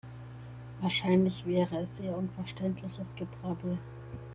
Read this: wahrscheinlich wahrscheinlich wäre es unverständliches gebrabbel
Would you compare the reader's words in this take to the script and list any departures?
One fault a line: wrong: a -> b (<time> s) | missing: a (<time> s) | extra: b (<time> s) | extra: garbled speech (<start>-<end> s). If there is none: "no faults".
missing: wahrscheinlich (1.4 s)
extra: eher (2.0 s)